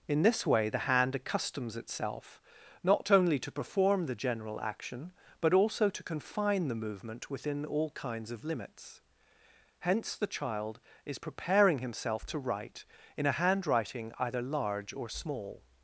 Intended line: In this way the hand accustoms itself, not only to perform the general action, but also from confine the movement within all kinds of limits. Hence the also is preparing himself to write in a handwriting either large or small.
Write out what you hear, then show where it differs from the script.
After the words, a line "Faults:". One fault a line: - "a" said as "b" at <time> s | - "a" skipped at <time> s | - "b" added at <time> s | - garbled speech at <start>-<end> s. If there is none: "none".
In this way the hand accustoms itself, not only to perform the general action, but also to confine the movement within all kinds of limits. Hence the child is preparing himself to write in a handwriting either large or small.
Faults:
- "from" said as "to" at 5.9 s
- "also" said as "child" at 10.3 s